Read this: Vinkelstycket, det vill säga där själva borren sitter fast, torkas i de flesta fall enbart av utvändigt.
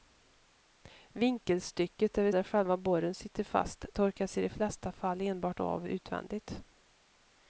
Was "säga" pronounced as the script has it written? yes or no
no